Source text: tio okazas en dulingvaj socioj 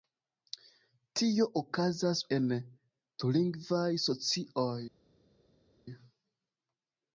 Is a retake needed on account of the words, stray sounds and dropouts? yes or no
no